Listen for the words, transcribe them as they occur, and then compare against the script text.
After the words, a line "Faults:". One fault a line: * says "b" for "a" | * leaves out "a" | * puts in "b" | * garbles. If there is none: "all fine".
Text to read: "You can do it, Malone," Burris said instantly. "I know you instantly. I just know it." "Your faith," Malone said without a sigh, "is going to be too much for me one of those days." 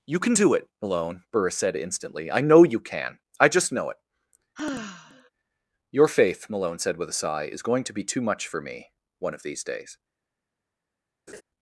"You can do it, Malone," Burris said instantly. "I know you can. I just know it." "Your faith," Malone said with a sigh, "is going to be too much for me one of these days."
Faults:
* says "can" for "instantly"
* says "with" for "without"
* says "these" for "those"